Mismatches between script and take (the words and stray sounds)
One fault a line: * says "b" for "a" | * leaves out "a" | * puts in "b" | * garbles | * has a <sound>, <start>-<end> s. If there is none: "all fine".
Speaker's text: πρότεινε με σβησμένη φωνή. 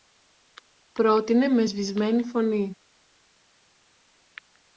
all fine